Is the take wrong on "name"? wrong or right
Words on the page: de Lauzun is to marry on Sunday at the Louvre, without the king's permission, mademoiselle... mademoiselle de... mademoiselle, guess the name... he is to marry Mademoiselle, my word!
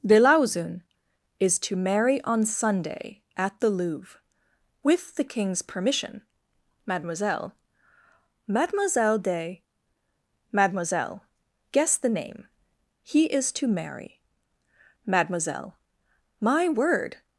right